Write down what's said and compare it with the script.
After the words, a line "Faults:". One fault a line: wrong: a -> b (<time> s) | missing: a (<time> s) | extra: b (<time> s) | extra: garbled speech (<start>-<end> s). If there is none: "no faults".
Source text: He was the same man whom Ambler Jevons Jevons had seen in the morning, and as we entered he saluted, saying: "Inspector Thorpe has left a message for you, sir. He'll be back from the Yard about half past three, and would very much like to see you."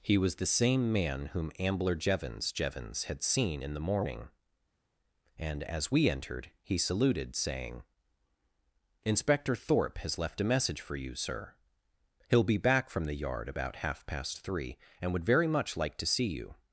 He was the same man whom Ambler Jevons Jevons had seen in the morning, and as we entered he saluted, saying: "Inspector Thorpe has left a message for you, sir. He'll be back from the Yard about half past three, and would very much like to see you."
Faults:
no faults